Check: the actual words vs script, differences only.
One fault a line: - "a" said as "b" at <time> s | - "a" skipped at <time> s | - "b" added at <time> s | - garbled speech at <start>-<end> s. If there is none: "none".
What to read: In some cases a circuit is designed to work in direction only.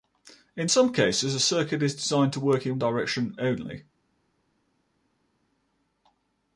none